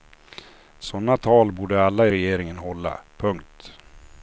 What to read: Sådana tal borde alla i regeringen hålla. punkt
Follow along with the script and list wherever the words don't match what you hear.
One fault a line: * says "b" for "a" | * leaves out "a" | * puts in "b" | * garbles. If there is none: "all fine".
all fine